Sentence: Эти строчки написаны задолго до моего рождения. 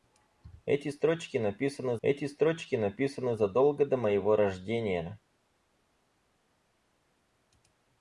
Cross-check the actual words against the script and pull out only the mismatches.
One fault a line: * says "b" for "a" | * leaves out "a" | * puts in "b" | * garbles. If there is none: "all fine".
* puts in "эти строчки написаны"